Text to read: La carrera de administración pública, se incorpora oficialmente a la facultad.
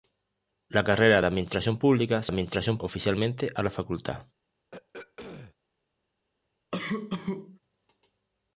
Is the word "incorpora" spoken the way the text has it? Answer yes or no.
no